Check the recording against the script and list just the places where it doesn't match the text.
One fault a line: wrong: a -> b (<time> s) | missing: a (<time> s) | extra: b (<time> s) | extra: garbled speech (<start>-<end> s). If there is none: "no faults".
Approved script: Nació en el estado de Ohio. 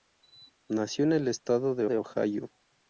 extra: de (1.9 s)